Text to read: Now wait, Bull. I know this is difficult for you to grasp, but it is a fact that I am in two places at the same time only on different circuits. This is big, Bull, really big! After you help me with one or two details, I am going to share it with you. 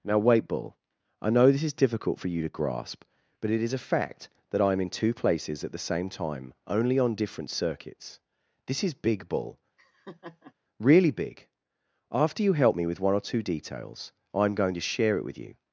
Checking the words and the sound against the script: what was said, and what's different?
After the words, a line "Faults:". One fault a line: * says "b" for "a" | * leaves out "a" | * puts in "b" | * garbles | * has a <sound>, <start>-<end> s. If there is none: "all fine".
Now wait, Bull. I know this is difficult for you to grasp, but it is a fact that I am in two places at the same time only on different circuits. This is big, Bull, really big! After you help me with one or two details, I am going to share it with you.
Faults:
* has a laugh, 9.8-10.5 s